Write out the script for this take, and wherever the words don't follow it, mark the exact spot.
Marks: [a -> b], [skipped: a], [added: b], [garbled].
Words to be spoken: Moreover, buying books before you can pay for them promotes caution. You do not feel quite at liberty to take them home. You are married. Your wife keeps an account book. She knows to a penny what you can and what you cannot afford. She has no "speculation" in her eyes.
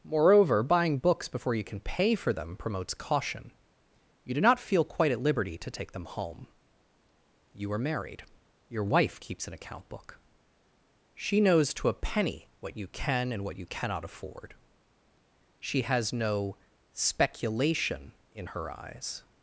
Moreover, buying books before you can pay for them promotes caution. You do not feel quite at liberty to take them home. You are married. Your wife keeps an account book. She knows to a penny what you can and what you cannot afford. She has no "speculation" in her eyes.